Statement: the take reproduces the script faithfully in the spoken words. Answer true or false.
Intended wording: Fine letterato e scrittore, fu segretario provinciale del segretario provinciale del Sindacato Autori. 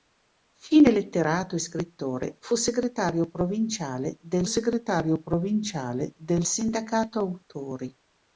true